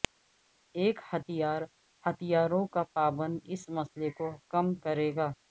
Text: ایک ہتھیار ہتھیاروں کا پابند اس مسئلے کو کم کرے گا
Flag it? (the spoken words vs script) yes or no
no